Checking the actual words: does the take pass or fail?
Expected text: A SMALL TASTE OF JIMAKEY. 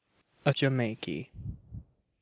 fail